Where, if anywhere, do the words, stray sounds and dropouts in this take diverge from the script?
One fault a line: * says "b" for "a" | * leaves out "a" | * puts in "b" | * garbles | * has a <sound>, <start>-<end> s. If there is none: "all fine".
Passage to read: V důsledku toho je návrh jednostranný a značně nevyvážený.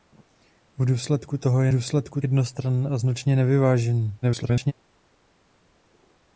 * says "důsledku" for "návrh"
* garbles